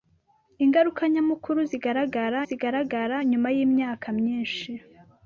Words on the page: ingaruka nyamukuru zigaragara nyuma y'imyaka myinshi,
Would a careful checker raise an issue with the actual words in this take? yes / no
yes